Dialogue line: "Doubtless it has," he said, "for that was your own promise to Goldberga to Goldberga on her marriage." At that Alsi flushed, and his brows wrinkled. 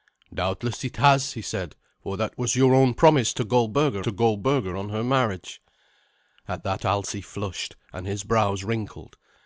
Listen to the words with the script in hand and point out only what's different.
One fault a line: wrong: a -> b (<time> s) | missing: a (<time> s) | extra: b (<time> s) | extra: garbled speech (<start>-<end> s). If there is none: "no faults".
no faults